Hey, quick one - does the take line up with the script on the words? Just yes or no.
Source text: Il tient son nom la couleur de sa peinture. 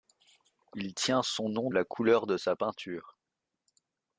yes